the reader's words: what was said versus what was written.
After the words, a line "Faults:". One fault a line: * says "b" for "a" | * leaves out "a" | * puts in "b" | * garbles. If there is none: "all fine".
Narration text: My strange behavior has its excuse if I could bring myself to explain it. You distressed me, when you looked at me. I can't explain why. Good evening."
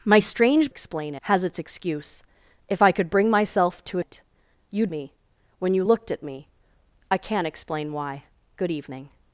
My strange explain has its excuse if I could bring myself to it. You me, when you looked at me. I can't explain why. Good evening."
Faults:
* says "explain" for "behavior"
* leaves out "explain"
* leaves out "distressed"